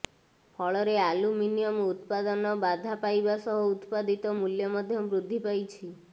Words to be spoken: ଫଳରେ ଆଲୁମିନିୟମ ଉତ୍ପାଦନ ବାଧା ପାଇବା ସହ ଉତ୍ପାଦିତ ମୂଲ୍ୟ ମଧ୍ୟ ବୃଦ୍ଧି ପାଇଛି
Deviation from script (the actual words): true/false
false